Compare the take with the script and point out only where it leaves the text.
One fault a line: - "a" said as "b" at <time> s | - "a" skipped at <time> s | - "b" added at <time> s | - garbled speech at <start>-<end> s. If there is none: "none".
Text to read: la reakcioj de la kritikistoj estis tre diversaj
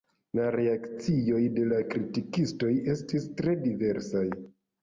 none